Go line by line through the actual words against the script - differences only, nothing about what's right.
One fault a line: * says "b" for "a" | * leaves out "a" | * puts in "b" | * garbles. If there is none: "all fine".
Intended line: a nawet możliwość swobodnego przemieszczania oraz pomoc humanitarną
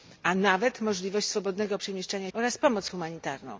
all fine